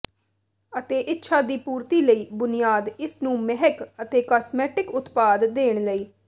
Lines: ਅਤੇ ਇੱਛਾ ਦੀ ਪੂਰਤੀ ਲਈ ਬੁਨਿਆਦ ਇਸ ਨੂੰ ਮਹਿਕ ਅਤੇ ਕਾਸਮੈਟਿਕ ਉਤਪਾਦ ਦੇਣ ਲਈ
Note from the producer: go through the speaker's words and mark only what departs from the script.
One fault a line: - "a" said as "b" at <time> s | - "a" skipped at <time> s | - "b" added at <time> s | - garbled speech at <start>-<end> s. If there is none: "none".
none